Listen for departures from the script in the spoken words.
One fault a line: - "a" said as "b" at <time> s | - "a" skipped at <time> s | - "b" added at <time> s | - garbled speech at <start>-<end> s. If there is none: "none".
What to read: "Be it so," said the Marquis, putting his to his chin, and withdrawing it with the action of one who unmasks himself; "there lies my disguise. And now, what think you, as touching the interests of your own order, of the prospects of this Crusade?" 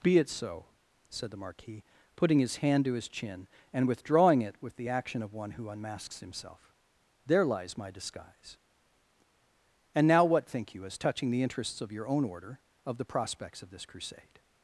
- "hand" added at 2.6 s